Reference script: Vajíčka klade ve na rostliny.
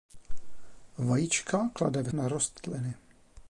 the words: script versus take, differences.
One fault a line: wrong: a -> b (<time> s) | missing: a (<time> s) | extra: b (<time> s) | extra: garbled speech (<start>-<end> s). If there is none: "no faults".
no faults